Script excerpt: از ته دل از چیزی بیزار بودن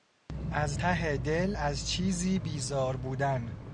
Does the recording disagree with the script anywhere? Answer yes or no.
no